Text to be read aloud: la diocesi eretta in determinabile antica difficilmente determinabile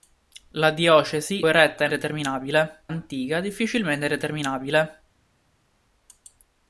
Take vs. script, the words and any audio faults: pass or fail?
pass